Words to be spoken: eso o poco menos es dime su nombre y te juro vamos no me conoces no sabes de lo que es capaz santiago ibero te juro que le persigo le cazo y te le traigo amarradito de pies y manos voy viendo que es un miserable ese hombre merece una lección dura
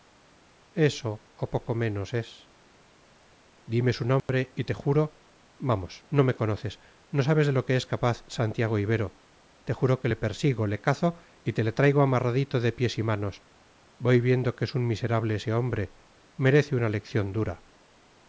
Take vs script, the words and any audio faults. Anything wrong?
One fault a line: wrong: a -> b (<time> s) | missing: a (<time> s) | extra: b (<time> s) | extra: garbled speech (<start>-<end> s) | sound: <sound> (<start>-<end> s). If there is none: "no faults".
sound: dropout (4.2-4.3 s)